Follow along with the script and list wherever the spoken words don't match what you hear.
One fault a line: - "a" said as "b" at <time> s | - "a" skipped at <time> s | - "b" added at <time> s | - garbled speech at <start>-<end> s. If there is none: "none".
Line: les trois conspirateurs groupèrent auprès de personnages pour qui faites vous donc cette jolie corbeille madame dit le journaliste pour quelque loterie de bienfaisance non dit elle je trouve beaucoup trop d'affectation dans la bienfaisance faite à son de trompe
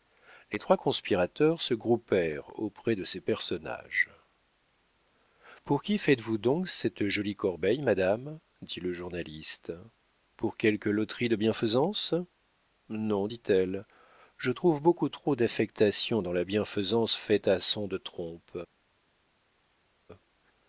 - "se" added at 1.6 s
- "ces" added at 3.0 s